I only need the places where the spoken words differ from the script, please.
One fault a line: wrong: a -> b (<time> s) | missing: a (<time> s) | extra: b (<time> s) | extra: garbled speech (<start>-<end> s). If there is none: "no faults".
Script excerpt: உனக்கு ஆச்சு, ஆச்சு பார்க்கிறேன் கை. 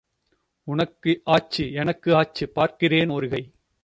extra: எனக்கு (1.7 s)
extra: ஒரு (3.1 s)